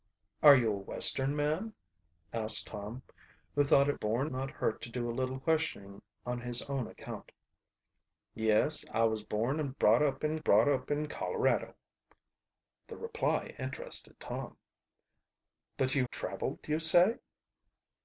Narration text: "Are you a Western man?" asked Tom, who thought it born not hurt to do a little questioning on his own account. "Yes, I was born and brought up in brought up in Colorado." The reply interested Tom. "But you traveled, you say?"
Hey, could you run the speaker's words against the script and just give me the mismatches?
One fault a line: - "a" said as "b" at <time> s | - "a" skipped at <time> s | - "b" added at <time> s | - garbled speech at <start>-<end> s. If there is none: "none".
none